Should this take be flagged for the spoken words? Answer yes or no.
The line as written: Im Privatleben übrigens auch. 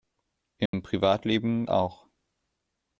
yes